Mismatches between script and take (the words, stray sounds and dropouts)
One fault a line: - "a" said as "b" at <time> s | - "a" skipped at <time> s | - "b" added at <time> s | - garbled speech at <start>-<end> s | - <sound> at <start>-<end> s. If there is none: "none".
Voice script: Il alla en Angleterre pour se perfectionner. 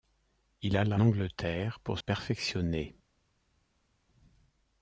- "en" skipped at 1.0 s
- "se" skipped at 2.0 s